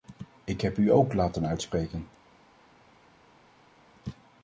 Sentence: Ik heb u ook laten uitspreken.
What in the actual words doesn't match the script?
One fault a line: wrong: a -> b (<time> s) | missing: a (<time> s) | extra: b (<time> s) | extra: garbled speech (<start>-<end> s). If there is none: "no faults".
no faults